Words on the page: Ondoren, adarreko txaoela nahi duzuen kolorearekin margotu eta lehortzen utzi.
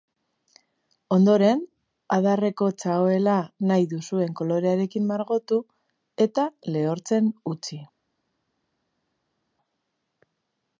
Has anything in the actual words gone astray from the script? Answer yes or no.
no